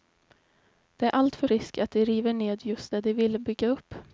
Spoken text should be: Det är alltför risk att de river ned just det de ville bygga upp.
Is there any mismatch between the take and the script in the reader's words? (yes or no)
no